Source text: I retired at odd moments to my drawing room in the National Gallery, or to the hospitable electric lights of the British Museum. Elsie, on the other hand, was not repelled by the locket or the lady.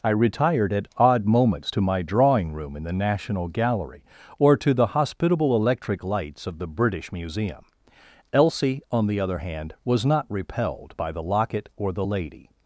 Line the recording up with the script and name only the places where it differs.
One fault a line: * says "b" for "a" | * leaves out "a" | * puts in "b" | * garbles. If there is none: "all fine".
all fine